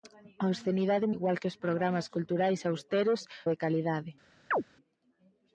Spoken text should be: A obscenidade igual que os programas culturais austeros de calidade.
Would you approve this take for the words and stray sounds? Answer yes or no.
no